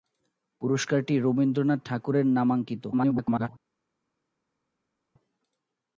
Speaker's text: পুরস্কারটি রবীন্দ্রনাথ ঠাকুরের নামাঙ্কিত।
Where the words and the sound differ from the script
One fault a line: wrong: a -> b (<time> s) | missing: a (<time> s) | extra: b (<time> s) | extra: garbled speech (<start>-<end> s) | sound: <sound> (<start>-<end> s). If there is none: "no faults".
extra: garbled speech (2.9-3.5 s)